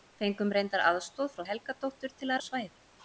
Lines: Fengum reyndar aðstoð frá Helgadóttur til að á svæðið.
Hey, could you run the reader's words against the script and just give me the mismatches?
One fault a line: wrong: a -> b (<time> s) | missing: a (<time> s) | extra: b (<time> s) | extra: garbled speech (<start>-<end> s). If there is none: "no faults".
no faults